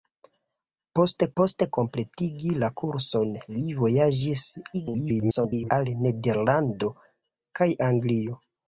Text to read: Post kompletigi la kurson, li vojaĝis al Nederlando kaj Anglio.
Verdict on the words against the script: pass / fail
fail